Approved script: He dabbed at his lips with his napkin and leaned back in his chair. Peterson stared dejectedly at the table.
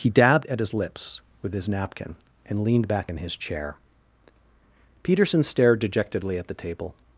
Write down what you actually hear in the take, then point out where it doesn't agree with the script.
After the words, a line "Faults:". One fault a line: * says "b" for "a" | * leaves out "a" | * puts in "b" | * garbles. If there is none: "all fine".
He dabbed at his lips with his napkin and leaned back in his chair. Peterson stared dejectedly at the table.
Faults:
all fine